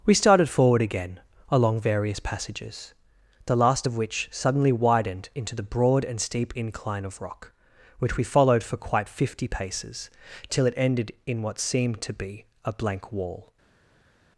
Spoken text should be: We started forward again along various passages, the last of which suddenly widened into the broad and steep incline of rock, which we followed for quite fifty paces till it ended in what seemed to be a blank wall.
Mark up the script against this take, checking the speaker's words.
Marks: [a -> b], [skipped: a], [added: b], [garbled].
We started forward again along various passages, the last of which suddenly widened into the broad and steep incline of rock, which we followed for quite fifty paces till it ended in what seemed to be a blank wall.